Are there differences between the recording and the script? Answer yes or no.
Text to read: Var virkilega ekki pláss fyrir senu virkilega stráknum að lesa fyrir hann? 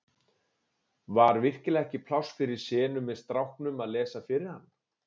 yes